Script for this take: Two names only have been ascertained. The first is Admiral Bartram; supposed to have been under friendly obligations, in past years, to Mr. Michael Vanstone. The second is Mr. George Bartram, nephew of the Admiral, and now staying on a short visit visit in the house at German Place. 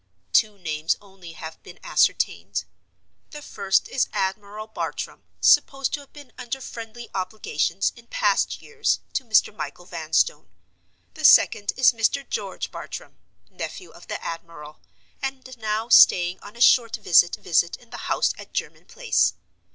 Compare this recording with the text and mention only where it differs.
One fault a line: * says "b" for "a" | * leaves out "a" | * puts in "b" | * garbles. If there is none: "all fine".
all fine